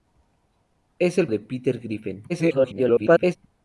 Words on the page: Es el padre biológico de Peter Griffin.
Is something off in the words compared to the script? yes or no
yes